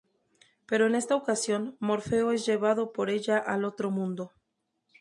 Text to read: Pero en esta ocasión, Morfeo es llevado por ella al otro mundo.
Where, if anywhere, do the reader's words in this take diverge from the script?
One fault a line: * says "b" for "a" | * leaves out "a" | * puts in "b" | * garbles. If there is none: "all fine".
all fine